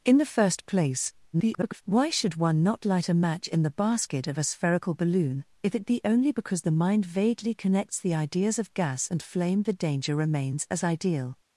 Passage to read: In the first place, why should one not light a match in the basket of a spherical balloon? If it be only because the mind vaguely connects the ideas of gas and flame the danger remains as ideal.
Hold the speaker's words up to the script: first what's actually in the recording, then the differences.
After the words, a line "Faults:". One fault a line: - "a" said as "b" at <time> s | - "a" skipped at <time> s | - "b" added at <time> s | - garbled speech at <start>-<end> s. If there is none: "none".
In the first place, [garbled] why should one not light a match in the basket of a spherical balloon? If it be only because the mind vaguely connects the ideas of gas and flame the danger remains as ideal.
Faults:
- garbled speech at 1.3-1.8 s